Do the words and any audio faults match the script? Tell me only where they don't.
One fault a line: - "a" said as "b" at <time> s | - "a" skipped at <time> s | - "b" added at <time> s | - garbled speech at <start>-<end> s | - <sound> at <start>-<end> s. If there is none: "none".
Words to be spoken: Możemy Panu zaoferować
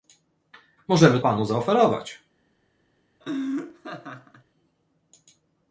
- laugh at 3.2-4.4 s